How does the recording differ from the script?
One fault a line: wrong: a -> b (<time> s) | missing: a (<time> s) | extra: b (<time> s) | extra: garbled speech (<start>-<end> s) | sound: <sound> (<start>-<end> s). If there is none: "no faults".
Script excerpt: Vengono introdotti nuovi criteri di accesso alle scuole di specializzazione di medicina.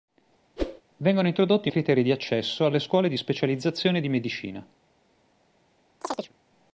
sound: whoosh (0.6-0.8 s)
missing: nuovi (1.7 s)
sound: chirp (6.0-6.3 s)